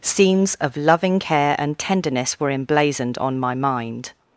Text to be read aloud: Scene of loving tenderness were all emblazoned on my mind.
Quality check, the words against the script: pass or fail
fail